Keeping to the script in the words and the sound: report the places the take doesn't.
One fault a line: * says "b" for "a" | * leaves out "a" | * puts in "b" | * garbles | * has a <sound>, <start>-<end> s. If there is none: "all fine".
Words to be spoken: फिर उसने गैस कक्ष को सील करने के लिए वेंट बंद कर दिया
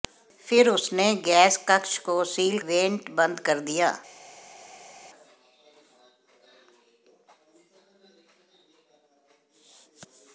* leaves out "करने के लिए"